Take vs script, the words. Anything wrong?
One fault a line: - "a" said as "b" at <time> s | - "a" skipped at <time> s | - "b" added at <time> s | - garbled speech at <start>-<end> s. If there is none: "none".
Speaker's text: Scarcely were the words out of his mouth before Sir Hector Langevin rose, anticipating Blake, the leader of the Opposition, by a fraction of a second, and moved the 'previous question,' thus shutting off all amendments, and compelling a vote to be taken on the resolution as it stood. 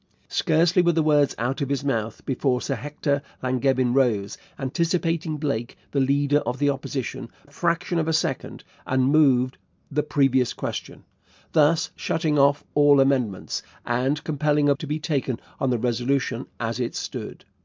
- "by" skipped at 7.3 s
- "vote" skipped at 14.7 s